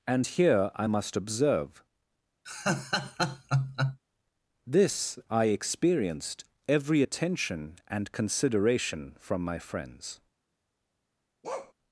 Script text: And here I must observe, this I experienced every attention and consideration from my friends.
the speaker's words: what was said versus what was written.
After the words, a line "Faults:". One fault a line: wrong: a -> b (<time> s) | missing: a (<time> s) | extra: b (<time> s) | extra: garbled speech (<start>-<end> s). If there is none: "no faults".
And here I must observe, this I experienced every attention and consideration from my friends.
Faults:
no faults